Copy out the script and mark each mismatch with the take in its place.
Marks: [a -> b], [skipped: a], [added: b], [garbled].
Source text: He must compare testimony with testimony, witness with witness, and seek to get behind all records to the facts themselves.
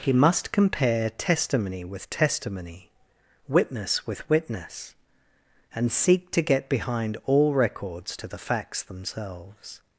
He must compare testimony with testimony, witness with witness, and seek to get behind all records to the facts themselves.